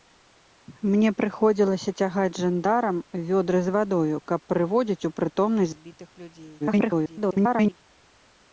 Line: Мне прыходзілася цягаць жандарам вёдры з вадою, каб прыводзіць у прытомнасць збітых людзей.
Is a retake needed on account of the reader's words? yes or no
yes